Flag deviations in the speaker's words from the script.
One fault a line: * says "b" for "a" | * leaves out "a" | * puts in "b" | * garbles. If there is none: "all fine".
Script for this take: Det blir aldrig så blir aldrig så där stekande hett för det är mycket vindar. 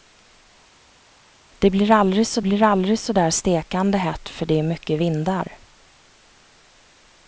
all fine